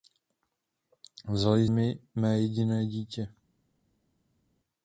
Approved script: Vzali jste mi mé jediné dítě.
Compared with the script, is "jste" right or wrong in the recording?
wrong